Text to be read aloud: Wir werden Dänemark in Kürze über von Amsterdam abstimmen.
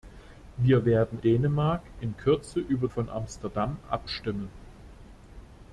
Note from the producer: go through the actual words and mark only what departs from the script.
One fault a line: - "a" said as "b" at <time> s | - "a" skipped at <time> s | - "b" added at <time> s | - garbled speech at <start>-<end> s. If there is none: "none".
none